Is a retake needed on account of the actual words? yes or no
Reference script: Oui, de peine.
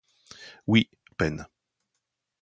no